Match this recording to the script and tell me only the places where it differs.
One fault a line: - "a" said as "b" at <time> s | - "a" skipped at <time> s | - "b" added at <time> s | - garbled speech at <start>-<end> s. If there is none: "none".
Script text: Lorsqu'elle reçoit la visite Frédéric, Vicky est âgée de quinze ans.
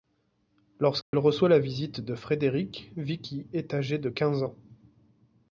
- "de" added at 2.0 s